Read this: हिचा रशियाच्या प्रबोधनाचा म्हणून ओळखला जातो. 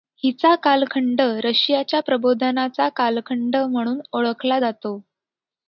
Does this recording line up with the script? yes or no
no